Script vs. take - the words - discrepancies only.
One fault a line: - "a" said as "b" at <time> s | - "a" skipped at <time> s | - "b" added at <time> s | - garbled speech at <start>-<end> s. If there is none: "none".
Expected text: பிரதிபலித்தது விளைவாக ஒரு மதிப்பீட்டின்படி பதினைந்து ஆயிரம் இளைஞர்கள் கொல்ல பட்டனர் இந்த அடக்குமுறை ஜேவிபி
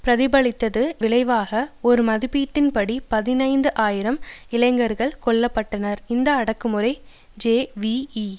none